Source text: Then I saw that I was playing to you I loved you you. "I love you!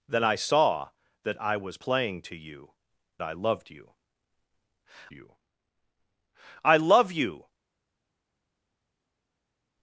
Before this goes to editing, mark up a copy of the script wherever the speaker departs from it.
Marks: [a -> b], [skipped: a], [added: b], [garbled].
Then I saw that I was playing to you I loved you you. "I love you!